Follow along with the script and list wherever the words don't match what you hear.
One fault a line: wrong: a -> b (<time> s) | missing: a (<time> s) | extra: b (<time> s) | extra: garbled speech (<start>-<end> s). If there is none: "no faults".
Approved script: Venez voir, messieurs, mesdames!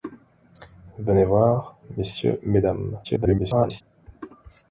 extra: garbled speech (3.0-3.8 s)